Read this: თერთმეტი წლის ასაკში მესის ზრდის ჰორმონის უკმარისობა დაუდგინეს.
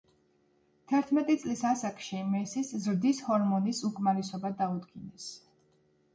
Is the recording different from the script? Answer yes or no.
no